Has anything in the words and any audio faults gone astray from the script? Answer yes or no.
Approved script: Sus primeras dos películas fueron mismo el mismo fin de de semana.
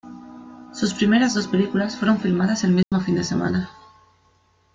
yes